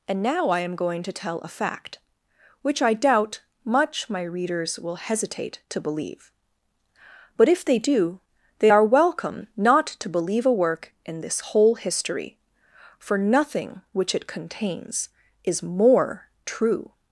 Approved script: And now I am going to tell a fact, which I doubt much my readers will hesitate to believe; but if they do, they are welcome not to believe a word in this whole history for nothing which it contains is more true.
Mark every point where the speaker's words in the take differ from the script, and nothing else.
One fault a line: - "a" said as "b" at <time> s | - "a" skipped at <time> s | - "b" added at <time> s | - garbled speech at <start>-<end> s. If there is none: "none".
- "word" said as "work" at 10.5 s